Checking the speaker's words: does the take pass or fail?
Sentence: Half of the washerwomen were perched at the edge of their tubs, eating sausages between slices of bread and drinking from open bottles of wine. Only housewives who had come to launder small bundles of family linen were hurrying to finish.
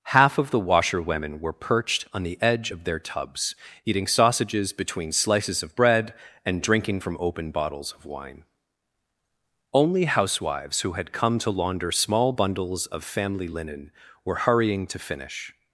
fail